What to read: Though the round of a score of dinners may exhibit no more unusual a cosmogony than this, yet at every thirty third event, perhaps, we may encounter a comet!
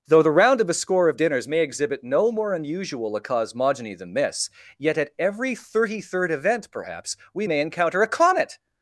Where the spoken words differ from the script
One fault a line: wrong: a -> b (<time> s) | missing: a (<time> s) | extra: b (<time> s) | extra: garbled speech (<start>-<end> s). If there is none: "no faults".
no faults